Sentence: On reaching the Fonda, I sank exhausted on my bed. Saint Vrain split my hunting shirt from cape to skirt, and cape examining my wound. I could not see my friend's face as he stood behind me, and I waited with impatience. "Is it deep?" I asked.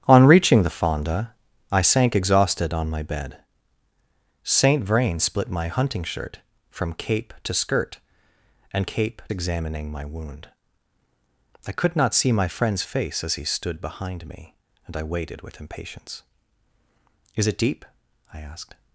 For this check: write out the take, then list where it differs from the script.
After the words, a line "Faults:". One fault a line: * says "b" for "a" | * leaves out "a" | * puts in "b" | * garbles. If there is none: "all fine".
On reaching the Fonda, I sank exhausted on my bed. Saint Vrain split my hunting shirt from cape to skirt, and cape examining my wound. I could not see my friend's face as he stood behind me, and I waited with impatience. "Is it deep?" I asked.
Faults:
all fine